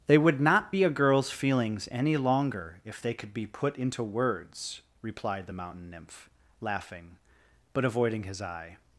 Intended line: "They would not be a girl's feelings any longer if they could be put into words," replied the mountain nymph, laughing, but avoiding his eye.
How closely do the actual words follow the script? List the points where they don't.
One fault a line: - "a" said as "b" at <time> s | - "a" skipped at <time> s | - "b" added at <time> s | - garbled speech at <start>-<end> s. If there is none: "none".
none